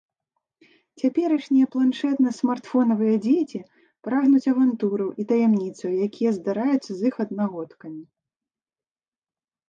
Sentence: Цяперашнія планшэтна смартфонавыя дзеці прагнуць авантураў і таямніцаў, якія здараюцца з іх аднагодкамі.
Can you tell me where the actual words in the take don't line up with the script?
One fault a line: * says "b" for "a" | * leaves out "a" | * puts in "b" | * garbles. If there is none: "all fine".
all fine